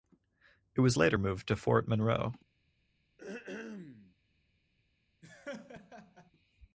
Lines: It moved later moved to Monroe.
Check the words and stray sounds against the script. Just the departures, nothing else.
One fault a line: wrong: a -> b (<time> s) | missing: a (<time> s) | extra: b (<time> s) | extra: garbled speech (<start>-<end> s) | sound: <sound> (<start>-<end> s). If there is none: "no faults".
wrong: moved -> was (0.8 s)
extra: Fort (1.5 s)
sound: throat clearing (3.2-4.2 s)
sound: laugh (5.2-6.3 s)